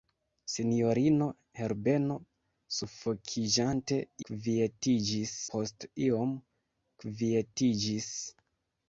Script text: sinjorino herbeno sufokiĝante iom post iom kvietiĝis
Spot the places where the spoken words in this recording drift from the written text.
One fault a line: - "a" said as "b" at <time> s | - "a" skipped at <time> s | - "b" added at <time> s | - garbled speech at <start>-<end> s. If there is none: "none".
- "iom" said as "kvietiĝis" at 4.3 s